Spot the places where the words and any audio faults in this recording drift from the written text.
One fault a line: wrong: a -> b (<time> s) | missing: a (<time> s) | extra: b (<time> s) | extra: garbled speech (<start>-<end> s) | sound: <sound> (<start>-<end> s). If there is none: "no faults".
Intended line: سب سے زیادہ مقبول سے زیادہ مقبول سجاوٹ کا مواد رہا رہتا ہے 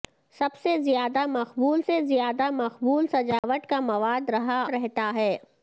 sound: dropout (3.4-3.4 s)